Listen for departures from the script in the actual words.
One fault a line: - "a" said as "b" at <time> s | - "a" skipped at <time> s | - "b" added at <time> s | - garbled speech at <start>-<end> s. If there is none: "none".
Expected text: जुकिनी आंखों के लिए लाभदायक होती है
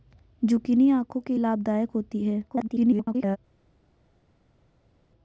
- "लिए" skipped at 1.4 s
- garbled speech at 2.5-3.4 s